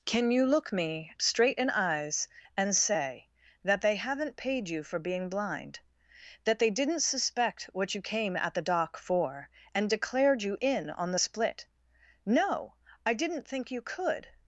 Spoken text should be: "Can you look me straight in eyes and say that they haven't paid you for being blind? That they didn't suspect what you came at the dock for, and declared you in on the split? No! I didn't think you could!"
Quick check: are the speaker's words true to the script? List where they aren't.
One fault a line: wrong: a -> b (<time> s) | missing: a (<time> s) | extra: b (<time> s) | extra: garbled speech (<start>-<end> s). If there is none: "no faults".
no faults